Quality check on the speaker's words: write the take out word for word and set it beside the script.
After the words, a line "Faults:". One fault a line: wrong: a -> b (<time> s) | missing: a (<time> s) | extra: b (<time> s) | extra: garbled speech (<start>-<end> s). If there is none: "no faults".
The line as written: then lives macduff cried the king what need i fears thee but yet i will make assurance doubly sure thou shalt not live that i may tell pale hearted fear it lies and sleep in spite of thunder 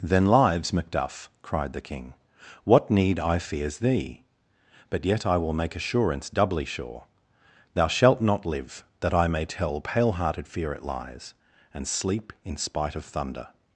then lives macduff cried the king what need i fears thee but yet i will make assurance doubly sure thou shalt not live that i may tell pale hearted fear it lies and sleep in spite of thunder
Faults:
no faults